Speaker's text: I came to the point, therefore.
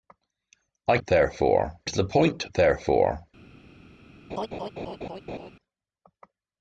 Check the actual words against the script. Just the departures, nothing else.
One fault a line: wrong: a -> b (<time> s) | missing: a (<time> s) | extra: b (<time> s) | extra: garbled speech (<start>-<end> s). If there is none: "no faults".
wrong: came -> therefore (1.1 s)